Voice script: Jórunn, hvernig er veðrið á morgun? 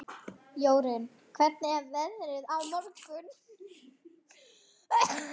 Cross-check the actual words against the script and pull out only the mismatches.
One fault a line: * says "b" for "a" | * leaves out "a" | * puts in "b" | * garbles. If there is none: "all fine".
all fine